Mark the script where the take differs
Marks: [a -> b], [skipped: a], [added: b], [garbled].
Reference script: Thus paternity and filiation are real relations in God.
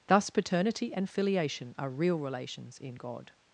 Thus paternity and filiation are real relations in God.